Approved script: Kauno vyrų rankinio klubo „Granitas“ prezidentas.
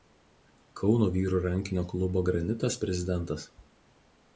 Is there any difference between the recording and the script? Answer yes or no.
no